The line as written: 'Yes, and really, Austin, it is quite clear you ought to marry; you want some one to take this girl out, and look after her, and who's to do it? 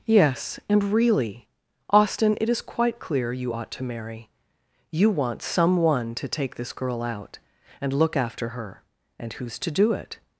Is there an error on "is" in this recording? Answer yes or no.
no